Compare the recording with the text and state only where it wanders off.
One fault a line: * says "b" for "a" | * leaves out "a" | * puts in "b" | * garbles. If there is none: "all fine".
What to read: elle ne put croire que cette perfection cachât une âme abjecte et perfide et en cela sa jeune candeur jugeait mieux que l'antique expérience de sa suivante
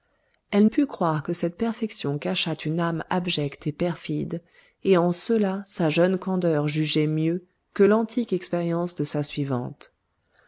* leaves out "ne"